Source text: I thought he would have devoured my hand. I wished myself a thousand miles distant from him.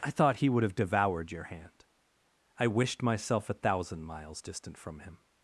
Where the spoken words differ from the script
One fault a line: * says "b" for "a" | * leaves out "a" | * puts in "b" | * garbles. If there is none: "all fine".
* says "your" for "my"